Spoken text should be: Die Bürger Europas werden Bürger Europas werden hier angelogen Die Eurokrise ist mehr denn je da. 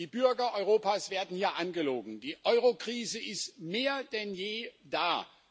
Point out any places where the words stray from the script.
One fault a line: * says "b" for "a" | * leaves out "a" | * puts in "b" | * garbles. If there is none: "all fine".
* leaves out "Bürger Europas werden"